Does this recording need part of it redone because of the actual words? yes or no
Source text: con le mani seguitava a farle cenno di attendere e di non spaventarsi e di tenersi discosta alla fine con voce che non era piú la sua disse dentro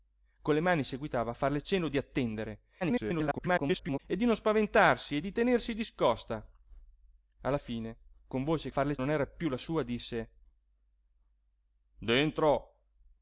yes